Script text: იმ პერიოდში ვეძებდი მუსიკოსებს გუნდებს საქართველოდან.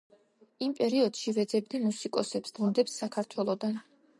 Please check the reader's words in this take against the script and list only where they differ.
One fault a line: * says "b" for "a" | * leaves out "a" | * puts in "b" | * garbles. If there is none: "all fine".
all fine